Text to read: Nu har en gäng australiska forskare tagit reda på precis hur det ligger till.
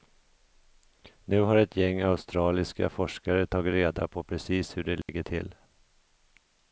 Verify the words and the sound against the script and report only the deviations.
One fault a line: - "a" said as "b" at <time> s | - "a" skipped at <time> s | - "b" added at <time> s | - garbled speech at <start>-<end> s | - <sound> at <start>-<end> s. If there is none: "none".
- "en" said as "ett" at 1.6 s
- dropout at 5.0-5.1 s